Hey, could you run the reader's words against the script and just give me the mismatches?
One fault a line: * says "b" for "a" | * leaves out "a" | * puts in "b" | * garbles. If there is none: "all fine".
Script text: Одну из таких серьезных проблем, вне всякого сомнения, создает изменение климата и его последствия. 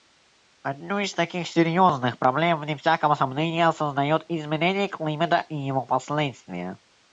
all fine